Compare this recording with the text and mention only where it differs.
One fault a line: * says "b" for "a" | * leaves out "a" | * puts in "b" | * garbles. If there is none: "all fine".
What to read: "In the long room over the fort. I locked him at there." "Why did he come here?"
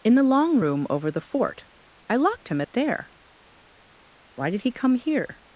all fine